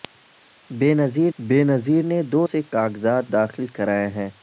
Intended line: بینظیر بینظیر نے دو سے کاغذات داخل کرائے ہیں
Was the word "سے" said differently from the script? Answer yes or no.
no